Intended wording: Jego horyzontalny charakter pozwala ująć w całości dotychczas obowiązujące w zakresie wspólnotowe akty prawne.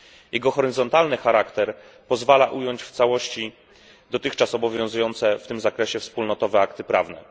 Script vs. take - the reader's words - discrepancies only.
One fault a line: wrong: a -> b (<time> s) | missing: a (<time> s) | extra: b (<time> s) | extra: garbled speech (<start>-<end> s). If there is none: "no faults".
extra: tym (5.4 s)